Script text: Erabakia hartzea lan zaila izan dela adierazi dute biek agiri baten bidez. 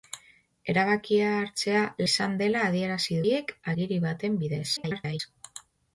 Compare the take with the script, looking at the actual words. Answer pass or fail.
fail